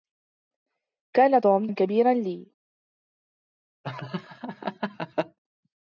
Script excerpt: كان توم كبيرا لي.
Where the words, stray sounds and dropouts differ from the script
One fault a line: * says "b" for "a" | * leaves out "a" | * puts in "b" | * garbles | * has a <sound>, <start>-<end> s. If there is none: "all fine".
* has a laugh, 3.8-5.4 s